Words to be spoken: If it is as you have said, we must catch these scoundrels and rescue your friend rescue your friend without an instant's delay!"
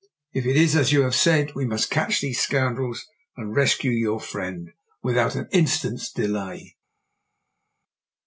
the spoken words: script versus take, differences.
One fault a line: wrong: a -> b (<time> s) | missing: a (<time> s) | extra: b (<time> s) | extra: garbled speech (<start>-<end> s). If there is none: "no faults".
missing: rescue your friend (4.7 s)